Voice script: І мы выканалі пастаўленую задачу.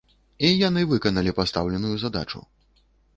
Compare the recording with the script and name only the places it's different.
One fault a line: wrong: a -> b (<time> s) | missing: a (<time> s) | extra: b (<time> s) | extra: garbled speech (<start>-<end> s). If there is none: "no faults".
wrong: мы -> яны (0.7 s)